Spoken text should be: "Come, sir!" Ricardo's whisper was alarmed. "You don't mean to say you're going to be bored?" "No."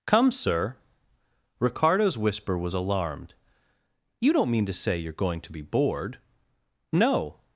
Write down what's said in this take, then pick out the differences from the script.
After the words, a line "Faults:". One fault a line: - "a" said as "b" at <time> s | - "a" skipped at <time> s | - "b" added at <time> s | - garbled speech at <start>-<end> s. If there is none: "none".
"Come, sir!" Ricardo's whisper was alarmed. "You don't mean to say you're going to be bored?" "No."
Faults:
none